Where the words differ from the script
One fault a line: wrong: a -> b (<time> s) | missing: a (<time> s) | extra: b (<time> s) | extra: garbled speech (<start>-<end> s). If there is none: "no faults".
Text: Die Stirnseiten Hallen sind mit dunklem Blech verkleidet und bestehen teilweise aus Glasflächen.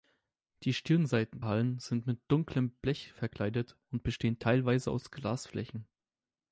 no faults